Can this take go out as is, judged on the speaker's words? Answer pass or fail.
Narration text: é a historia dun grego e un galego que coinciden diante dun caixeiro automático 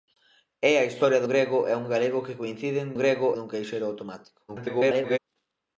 fail